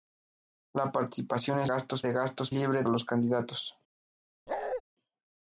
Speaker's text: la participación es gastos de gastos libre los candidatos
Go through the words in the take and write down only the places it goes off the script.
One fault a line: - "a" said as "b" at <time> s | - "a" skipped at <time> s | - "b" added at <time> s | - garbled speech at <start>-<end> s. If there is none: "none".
none